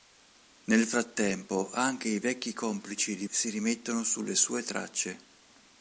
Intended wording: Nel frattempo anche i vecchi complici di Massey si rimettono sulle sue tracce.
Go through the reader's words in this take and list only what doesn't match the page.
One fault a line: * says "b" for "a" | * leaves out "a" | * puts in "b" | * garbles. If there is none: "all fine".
* leaves out "Massey"